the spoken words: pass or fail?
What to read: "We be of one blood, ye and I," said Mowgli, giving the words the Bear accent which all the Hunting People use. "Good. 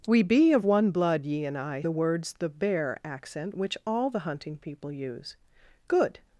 fail